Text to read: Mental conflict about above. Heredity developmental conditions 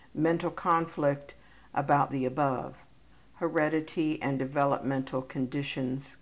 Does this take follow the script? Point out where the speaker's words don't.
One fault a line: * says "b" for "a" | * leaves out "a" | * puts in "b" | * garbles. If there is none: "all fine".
* puts in "the"
* puts in "and"